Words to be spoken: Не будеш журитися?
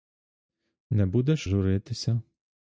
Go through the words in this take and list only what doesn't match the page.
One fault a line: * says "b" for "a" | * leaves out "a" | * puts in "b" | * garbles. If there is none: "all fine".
all fine